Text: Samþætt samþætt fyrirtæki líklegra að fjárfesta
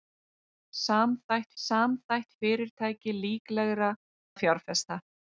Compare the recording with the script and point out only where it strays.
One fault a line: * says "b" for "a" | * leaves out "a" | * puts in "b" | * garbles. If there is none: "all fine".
all fine